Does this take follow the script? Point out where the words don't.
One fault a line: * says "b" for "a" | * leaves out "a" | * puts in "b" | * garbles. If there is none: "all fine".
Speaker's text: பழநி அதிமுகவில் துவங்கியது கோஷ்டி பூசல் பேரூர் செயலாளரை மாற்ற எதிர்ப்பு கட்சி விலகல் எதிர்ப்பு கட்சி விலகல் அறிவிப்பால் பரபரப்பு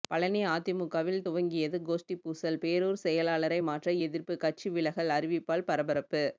* leaves out "எதிர்ப்பு கட்சி விலகல்"